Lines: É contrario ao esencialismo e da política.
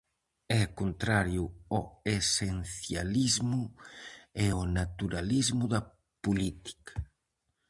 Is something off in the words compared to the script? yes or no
yes